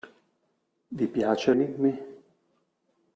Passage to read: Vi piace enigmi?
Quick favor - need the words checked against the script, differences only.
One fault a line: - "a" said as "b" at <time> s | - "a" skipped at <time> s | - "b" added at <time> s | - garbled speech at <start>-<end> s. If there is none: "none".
none